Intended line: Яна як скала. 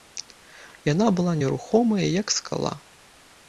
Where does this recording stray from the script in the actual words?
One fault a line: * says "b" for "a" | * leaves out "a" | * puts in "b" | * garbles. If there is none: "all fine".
* puts in "была нерухомая"